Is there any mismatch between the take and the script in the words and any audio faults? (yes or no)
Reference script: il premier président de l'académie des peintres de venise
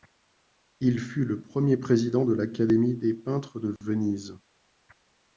yes